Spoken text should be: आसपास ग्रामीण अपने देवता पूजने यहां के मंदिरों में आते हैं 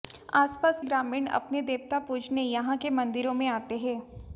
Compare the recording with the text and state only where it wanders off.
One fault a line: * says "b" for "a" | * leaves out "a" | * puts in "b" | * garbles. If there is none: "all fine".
all fine